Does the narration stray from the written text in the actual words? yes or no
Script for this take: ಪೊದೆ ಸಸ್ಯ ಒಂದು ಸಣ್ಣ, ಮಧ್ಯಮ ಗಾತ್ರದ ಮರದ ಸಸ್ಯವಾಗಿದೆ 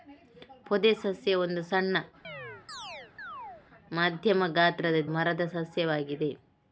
no